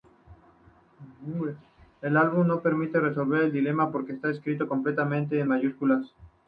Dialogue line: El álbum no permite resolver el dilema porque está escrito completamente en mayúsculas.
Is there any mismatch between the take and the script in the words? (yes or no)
no